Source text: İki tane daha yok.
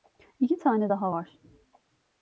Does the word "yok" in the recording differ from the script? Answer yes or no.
yes